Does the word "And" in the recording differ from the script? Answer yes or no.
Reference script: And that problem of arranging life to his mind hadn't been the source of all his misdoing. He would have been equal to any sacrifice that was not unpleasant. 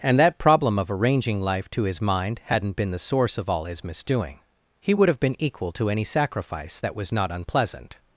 no